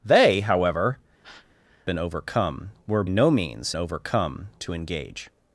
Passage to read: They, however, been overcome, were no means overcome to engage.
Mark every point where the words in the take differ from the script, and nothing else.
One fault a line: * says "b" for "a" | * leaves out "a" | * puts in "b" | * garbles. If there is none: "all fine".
all fine